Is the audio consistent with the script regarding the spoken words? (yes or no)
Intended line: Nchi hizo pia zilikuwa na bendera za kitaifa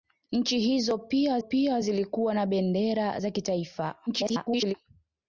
no